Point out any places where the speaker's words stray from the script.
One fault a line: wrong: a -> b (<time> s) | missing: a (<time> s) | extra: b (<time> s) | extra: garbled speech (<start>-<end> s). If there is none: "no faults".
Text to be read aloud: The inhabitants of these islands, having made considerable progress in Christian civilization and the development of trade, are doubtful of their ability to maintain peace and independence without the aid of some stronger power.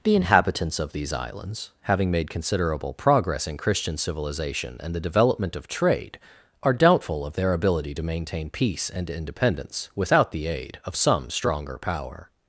no faults